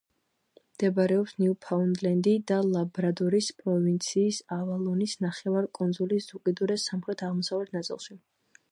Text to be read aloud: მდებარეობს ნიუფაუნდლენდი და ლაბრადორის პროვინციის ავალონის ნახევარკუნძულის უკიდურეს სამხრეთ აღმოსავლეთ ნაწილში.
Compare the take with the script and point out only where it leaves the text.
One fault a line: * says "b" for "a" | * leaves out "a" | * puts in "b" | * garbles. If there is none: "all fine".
all fine